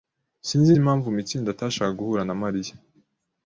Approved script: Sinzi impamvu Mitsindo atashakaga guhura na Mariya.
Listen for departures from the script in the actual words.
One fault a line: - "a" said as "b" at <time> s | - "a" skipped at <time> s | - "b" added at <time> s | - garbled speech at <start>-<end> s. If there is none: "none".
none